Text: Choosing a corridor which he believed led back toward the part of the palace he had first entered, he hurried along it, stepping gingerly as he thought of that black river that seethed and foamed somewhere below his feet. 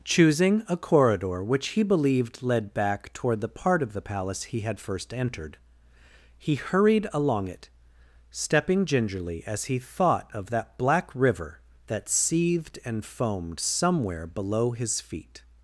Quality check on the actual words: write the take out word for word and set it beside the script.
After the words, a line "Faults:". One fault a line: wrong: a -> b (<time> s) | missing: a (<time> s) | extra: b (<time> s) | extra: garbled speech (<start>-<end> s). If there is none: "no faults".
Choosing a corridor which he believed led back toward the part of the palace he had first entered, he hurried along it, stepping gingerly as he thought of that black river that seethed and foamed somewhere below his feet.
Faults:
no faults